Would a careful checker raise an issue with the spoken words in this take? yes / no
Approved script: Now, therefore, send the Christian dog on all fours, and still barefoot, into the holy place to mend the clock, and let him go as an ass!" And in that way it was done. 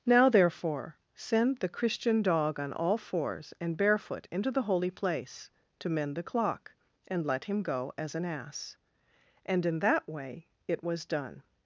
yes